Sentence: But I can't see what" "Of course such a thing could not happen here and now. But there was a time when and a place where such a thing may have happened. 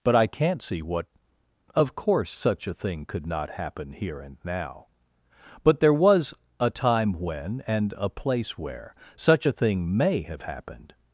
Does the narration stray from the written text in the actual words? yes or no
no